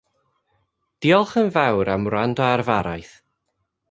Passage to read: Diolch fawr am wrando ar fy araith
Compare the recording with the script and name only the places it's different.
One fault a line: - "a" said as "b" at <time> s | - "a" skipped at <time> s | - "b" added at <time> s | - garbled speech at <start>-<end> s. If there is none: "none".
- "yn" added at 1.4 s